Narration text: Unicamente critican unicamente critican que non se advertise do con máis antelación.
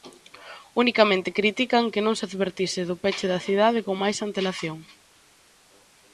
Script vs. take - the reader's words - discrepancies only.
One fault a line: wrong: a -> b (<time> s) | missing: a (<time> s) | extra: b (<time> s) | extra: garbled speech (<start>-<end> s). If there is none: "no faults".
missing: unicamente critican (1.9 s)
extra: peche da cidade (3.0 s)